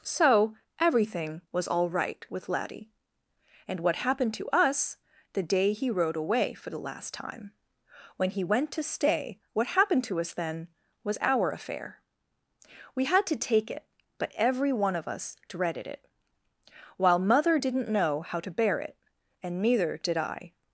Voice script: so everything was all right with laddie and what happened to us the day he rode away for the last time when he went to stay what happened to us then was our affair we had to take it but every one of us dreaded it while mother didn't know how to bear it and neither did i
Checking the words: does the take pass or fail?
pass